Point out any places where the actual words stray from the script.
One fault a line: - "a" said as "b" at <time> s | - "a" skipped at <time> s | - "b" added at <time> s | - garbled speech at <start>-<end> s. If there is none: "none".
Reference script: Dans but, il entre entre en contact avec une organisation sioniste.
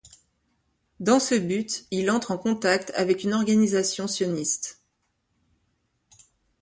- "ce" added at 1.2 s
- "entre" skipped at 2.3 s